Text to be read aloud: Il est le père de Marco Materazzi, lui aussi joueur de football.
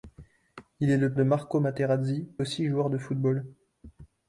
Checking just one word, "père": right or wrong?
wrong